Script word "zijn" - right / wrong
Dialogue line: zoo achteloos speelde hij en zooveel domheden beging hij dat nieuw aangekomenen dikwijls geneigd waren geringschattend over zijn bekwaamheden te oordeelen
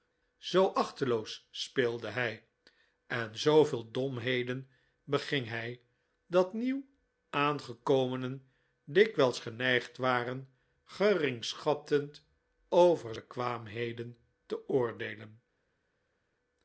wrong